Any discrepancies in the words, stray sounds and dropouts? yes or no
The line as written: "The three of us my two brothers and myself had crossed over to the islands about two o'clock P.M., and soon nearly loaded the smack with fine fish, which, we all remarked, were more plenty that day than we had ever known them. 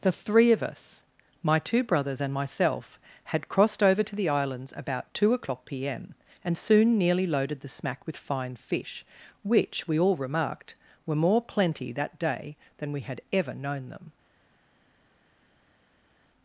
no